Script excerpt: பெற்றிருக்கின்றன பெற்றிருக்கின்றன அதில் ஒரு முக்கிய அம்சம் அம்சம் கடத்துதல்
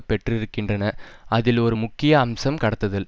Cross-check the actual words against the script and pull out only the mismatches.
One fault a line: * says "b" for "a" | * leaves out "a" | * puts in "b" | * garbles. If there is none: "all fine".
* leaves out "பெற்றிருக்கின்றன"
* leaves out "அம்சம்"